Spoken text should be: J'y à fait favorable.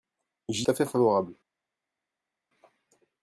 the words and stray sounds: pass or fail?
pass